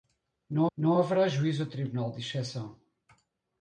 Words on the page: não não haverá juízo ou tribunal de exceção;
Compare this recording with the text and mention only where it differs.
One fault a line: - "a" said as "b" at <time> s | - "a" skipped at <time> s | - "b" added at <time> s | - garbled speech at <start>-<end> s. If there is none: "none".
none